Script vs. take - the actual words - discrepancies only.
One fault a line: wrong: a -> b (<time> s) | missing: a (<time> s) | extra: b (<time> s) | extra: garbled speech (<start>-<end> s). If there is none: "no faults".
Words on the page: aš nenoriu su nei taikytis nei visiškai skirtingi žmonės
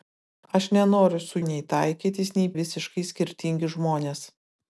no faults